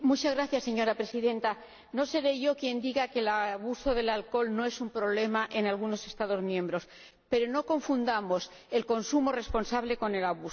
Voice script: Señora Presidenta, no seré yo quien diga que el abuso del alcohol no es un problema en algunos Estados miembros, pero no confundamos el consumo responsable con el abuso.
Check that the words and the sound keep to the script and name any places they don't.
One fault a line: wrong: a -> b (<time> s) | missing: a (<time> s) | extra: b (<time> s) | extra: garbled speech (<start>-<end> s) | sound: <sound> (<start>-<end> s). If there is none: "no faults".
no faults